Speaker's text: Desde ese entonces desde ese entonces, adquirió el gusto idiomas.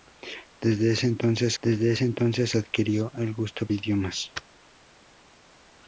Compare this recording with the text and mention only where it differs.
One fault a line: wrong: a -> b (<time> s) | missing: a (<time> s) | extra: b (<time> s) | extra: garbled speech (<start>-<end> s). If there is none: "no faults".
no faults